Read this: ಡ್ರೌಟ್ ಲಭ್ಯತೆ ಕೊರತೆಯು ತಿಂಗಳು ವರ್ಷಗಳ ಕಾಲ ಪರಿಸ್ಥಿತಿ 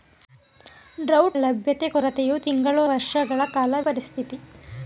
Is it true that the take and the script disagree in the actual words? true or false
false